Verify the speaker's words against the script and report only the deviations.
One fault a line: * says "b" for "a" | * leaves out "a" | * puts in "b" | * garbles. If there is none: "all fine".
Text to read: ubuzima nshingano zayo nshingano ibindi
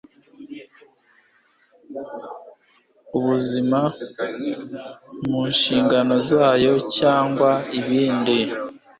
* puts in "mu"
* says "cyangwa" for "nshingano"